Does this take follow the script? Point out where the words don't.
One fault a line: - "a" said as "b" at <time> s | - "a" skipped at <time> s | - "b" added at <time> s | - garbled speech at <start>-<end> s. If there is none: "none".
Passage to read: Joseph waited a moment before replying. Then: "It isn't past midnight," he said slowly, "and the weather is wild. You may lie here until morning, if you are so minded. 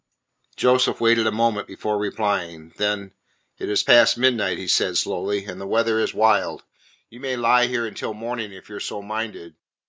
- "isn't" said as "is" at 3.7 s